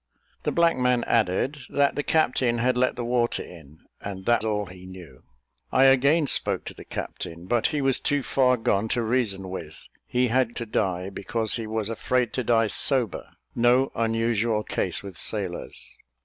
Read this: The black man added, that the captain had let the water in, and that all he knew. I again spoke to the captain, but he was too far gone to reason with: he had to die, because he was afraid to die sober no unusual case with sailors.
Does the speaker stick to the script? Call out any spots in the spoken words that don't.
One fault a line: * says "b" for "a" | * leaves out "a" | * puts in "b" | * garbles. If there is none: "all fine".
all fine